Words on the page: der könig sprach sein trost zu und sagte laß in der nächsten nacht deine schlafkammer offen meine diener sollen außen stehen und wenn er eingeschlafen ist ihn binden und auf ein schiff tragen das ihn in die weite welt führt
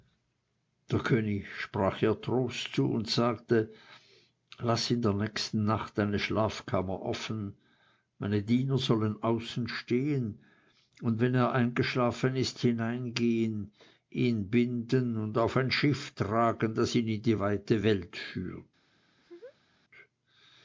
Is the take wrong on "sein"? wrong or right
wrong